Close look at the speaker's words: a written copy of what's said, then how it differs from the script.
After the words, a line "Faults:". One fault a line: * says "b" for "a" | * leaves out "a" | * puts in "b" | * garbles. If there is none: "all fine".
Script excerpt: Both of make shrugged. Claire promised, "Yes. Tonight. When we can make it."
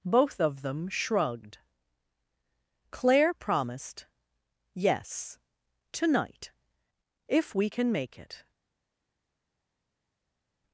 Both of them shrugged. Claire promised, "Yes. Tonight. If we can make it."
Faults:
* says "them" for "make"
* says "If" for "When"